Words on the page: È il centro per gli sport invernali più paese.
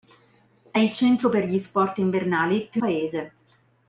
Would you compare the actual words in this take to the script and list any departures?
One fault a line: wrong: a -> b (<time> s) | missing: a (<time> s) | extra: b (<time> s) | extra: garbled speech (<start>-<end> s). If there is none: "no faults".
no faults